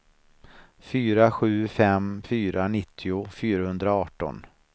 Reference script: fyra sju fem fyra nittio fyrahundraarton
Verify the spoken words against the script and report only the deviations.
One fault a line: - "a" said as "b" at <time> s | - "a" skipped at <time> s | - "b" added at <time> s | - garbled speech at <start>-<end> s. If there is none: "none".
none